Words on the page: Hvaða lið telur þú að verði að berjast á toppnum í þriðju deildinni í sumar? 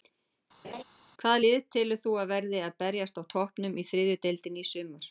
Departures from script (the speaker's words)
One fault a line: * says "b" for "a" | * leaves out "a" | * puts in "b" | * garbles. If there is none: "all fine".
all fine